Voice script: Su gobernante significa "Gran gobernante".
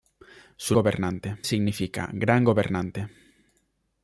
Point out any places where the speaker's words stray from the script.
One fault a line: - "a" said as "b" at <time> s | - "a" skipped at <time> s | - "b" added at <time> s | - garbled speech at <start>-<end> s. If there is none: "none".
none